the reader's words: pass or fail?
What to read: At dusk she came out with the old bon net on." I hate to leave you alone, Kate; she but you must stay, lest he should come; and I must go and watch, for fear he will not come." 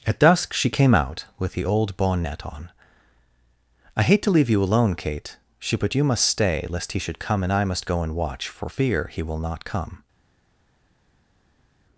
pass